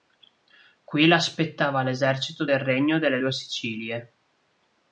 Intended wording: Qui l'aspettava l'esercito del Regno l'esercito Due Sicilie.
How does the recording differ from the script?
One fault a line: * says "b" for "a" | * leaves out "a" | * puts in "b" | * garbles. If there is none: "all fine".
* says "delle" for "l'esercito"